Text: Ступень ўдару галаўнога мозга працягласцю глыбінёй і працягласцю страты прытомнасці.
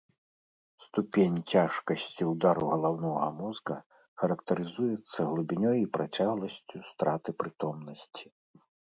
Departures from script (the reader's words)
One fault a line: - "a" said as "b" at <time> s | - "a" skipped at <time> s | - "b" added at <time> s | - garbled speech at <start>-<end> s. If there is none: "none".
- "цяжкасці" added at 1.6 s
- "працягласцю" said as "характарызуецца" at 4.2 s